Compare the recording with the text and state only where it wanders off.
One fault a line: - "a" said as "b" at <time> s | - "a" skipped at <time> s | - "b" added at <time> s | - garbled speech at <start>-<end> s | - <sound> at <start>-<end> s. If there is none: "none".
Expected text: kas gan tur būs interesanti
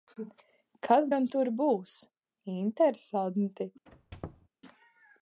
- squeak at 3.9-4.5 s